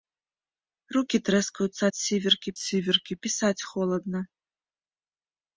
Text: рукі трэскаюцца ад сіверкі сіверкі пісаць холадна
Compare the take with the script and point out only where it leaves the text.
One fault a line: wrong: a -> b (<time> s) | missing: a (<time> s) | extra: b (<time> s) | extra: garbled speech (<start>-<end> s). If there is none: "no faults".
no faults